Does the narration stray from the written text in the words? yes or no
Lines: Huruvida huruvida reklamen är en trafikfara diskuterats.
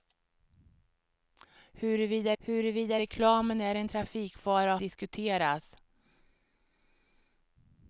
no